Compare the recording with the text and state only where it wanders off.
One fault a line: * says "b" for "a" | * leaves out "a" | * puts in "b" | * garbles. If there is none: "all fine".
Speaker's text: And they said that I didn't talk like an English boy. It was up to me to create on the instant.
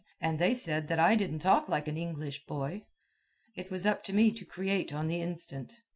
all fine